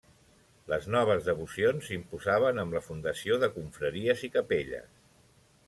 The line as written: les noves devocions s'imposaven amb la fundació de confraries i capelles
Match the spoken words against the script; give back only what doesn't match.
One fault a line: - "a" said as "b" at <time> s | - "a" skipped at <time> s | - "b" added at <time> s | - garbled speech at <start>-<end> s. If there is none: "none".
none